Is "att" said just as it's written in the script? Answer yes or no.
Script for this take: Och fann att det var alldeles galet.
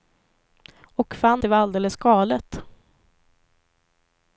no